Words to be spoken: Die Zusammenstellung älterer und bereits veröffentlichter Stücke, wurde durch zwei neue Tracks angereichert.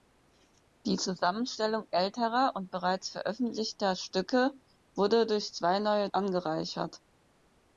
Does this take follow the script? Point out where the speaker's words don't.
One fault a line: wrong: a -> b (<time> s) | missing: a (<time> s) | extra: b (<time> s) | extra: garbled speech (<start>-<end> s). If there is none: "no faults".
missing: Tracks (6.1 s)